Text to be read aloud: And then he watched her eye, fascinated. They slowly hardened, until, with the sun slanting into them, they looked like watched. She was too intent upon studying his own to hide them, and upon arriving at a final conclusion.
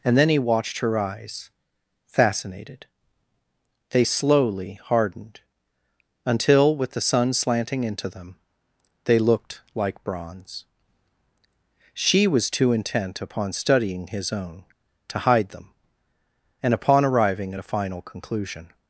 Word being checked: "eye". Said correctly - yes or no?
no